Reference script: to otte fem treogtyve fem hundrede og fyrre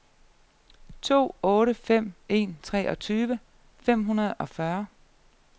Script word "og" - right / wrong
right